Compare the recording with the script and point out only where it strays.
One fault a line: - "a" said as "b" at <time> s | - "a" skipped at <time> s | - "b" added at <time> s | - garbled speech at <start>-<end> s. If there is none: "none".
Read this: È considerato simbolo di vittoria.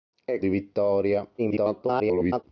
- "considerato simbolo" skipped at 0.4 s
- garbled speech at 1.4-2.4 s